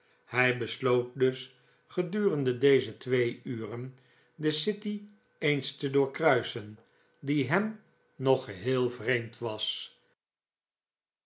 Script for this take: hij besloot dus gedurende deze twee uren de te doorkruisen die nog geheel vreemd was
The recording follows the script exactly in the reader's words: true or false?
false